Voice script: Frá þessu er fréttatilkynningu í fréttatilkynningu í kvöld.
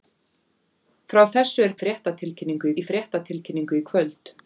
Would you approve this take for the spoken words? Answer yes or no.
yes